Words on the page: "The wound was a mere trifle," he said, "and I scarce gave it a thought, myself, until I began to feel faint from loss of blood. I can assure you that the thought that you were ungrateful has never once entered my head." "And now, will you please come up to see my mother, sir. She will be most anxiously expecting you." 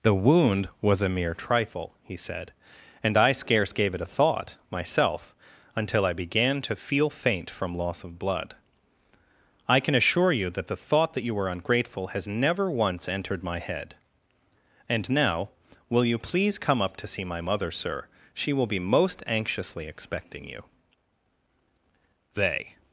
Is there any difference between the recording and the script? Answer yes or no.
yes